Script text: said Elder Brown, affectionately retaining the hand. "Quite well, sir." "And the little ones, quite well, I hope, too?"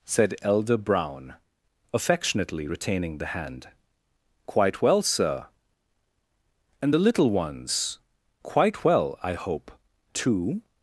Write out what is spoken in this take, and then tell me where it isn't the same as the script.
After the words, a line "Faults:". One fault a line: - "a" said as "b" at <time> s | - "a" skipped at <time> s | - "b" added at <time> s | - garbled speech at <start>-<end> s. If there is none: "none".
said Elder Brown, affectionately retaining the hand. "Quite well, sir." "And the little ones, quite well, I hope, too?"
Faults:
none